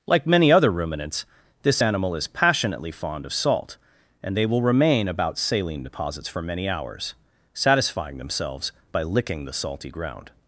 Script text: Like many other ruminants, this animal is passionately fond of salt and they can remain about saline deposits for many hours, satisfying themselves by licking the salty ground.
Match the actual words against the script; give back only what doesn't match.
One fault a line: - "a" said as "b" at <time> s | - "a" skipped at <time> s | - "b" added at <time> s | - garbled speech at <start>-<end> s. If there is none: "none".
- "can" said as "will" at 4.4 s